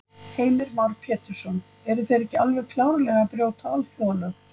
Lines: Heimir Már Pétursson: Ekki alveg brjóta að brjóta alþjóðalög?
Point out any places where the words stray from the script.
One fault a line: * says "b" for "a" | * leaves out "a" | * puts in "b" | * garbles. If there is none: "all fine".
* puts in "Eru þeir"
* says "klárlega" for "brjóta"